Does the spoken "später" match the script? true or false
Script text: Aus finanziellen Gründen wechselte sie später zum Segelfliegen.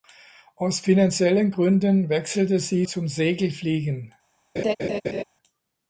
false